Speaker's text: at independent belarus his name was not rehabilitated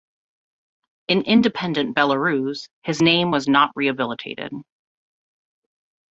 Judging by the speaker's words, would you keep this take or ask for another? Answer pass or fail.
fail